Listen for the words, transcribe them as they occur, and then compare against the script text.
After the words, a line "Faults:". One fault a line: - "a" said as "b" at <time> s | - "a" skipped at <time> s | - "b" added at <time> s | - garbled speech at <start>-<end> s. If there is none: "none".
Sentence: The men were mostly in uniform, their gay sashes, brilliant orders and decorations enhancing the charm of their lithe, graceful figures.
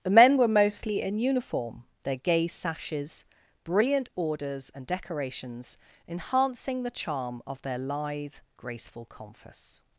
The men were mostly in uniform, their gay sashes, brilliant orders and decorations enhancing the charm of their lithe, graceful confus.
Faults:
- "figures" said as "confus" at 9.0 s